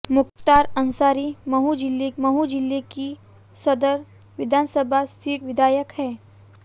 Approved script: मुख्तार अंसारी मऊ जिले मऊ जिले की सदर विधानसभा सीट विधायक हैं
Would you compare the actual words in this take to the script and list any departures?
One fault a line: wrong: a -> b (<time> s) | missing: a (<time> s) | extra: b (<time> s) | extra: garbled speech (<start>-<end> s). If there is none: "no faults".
no faults